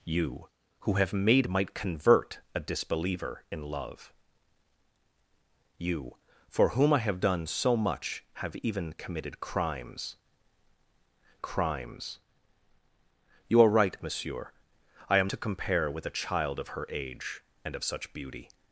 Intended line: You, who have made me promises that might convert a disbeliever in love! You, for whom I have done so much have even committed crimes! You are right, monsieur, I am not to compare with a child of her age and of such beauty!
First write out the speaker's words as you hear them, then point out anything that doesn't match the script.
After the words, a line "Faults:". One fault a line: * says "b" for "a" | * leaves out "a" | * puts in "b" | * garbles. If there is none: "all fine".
You, who have made might convert a disbeliever in love! You, for whom I have done so much have even committed crimes crimes! You are right, monsieur, I am to compare with a child of her age and of such beauty!
Faults:
* leaves out "me promises that"
* puts in "crimes"
* leaves out "not"